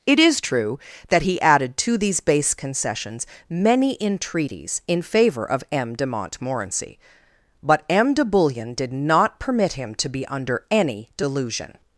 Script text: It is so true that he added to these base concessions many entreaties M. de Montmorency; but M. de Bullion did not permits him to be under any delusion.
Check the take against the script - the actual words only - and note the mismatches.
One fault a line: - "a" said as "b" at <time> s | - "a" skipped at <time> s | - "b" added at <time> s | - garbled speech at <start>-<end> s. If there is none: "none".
- "so" skipped at 0.4 s
- "in favor of" added at 4.9 s
- "permits" said as "permit" at 9.4 s